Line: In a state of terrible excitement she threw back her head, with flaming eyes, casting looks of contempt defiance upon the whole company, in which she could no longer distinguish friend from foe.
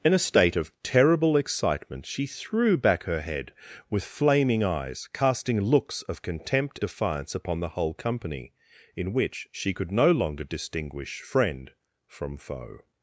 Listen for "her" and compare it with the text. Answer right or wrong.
right